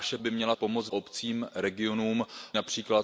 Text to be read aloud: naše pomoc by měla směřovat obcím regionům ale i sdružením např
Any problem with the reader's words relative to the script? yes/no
yes